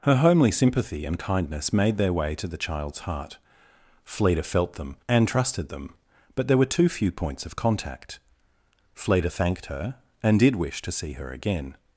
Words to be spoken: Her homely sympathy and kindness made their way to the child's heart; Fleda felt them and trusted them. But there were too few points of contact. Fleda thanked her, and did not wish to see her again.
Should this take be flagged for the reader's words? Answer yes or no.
yes